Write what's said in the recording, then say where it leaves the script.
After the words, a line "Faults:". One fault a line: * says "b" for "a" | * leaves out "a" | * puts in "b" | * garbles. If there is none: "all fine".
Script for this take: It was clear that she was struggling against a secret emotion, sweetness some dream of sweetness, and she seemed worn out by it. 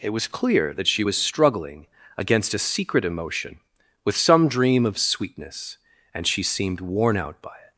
It was clear that she was struggling against a secret emotion, with some dream of sweetness, and she seemed worn out by it.
Faults:
* says "with" for "sweetness"